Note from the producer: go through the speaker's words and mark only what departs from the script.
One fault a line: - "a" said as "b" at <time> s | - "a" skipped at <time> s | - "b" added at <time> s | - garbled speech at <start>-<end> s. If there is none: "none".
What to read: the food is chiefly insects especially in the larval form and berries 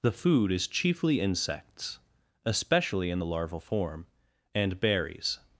none